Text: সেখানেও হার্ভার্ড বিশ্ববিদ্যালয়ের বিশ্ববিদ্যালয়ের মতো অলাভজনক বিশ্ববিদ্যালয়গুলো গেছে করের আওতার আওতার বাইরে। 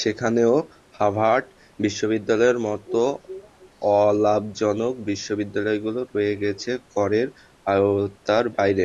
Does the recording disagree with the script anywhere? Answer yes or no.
yes